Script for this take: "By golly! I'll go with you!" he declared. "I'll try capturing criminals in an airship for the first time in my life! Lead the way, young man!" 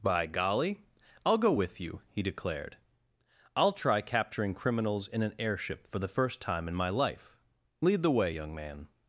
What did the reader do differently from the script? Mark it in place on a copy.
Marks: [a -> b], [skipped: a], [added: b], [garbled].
"By golly! I'll go with you!" he declared. "I'll try capturing criminals in an airship for the first time in my life! Lead the way, young man!"